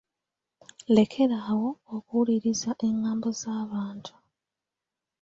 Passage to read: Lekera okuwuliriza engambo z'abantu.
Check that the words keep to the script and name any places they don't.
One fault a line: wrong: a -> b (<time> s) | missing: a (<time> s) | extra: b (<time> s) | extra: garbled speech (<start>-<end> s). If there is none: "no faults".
extra: awo (1.5 s)